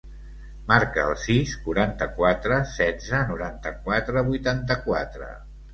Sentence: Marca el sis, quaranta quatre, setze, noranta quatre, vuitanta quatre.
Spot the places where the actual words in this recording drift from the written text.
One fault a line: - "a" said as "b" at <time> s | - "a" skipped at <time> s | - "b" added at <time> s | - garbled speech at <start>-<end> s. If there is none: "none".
none